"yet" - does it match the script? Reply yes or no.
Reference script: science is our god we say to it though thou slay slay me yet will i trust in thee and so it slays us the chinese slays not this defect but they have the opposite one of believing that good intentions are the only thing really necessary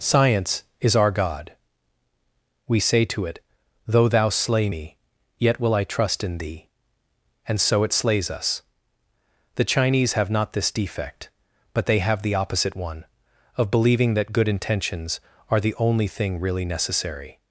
yes